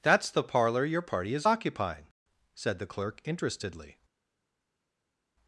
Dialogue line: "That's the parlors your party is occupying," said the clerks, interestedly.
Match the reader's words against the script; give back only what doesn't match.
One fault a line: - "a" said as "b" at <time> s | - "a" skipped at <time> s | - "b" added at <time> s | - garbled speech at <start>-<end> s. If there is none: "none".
- "parlors" said as "parlor" at 0.4 s
- "clerks" said as "clerk" at 2.9 s